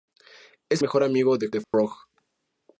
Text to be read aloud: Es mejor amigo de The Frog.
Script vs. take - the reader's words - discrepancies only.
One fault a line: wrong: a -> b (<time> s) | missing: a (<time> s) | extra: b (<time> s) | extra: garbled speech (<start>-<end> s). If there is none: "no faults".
no faults